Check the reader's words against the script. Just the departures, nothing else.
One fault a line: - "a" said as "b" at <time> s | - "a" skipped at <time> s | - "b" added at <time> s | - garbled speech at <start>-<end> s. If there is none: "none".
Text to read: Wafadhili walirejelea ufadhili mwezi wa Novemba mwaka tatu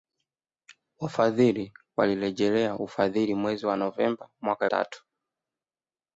none